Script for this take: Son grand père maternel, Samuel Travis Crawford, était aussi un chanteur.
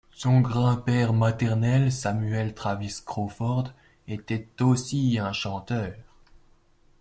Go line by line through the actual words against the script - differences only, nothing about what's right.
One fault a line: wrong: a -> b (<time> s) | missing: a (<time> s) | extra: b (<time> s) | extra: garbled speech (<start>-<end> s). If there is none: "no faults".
no faults